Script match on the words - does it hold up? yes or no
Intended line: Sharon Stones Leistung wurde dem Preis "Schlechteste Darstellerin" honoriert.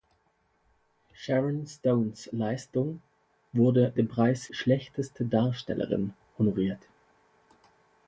yes